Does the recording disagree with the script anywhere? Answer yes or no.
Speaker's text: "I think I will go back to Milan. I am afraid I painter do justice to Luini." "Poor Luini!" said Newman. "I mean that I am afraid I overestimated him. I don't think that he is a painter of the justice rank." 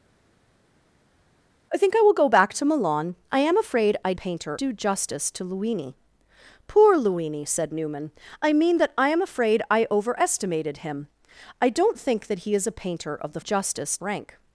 no